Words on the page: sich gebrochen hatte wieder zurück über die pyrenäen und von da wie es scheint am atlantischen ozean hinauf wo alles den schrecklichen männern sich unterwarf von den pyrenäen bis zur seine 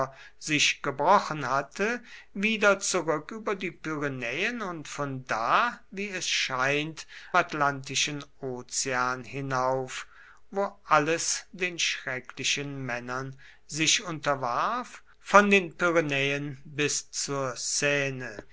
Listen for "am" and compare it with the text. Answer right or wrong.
wrong